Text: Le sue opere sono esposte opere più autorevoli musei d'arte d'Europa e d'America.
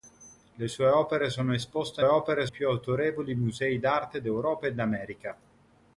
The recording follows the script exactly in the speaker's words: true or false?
true